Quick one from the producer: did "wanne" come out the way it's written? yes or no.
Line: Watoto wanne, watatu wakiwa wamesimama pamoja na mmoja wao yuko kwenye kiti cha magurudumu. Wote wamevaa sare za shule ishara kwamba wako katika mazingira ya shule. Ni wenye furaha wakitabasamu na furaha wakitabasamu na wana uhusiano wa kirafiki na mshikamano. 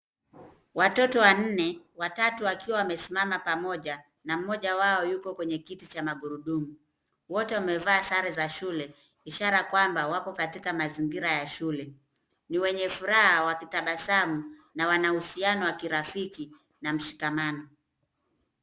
yes